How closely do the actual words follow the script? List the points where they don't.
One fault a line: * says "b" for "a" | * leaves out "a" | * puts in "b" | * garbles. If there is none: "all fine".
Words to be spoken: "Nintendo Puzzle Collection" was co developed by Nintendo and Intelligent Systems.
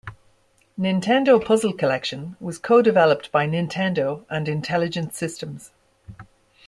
all fine